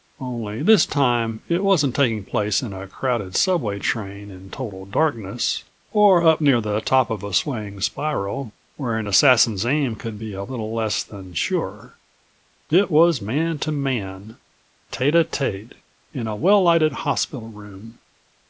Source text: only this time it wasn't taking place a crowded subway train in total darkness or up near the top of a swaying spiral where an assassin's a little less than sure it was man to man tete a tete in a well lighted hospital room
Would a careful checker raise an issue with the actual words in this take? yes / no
yes